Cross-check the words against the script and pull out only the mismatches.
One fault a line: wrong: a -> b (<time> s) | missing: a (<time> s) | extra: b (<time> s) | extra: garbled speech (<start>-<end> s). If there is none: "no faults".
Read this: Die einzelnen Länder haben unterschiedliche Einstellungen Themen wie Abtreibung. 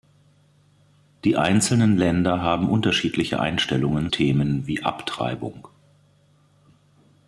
no faults